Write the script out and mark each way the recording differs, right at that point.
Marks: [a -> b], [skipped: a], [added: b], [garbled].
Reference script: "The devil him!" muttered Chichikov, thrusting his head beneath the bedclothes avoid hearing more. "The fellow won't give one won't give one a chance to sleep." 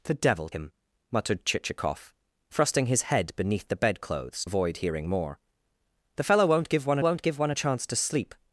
"The devil him!" muttered Chichikov, thrusting his head beneath the bedclothes avoid hearing more. "The fellow won't give one won't give one a chance to sleep."